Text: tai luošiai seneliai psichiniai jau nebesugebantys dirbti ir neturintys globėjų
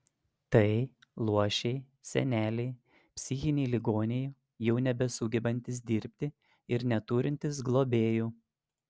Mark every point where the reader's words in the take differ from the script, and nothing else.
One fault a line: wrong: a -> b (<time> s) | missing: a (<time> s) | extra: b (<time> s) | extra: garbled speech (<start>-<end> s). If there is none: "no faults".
extra: ligoniai (3.8 s)